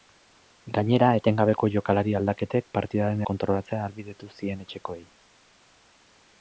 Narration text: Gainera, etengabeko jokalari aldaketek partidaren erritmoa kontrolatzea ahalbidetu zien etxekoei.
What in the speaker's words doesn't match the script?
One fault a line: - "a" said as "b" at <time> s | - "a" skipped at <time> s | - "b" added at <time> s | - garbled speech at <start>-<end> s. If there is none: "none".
- "erritmoa" skipped at 3.2 s